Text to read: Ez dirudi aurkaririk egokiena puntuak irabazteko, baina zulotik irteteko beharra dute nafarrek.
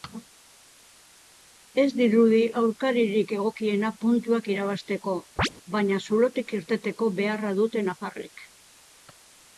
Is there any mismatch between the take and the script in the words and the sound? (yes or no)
yes